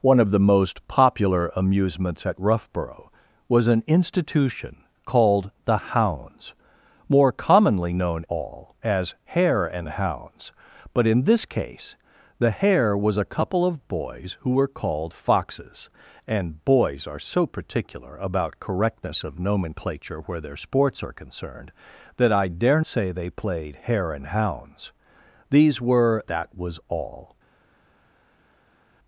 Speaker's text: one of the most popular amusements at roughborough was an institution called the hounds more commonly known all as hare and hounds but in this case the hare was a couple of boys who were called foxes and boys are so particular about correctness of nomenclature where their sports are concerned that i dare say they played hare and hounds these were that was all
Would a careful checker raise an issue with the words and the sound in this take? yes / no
no